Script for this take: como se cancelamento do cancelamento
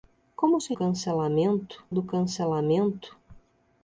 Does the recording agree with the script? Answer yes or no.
yes